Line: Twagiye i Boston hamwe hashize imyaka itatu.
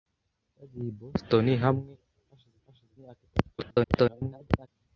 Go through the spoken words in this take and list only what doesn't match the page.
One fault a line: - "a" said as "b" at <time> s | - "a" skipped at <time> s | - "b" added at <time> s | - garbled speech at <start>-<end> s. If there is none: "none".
- "hashize" added at 2.6 s
- garbled speech at 3.6-4.7 s